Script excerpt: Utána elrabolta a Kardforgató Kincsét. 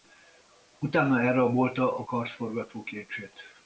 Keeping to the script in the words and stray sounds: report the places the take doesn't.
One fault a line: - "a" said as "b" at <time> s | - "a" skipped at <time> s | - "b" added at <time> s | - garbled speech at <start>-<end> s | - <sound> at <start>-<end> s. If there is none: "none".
none